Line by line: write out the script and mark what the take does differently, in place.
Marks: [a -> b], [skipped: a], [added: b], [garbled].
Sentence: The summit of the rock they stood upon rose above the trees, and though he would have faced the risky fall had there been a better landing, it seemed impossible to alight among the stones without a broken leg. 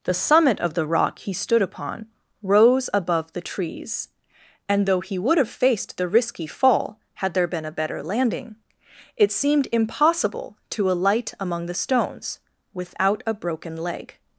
The summit of the rock [they -> he] stood upon rose above the trees, and though he would have faced the risky fall had there been a better landing, it seemed impossible to alight among the stones without a broken leg.